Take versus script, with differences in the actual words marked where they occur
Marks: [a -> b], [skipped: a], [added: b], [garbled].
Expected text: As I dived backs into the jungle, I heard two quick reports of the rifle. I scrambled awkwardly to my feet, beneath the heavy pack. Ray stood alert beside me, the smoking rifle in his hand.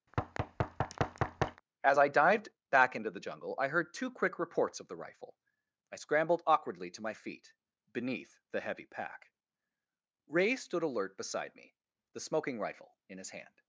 As I dived [backs -> back] into the jungle, I heard two quick reports of the rifle. I scrambled awkwardly to my feet, beneath the heavy pack. Ray stood alert beside me, the smoking rifle in his hand.